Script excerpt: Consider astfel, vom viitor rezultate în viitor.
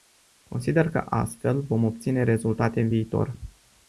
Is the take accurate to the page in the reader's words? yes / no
no